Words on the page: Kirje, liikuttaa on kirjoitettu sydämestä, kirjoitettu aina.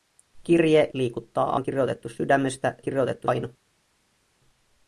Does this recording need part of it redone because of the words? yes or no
no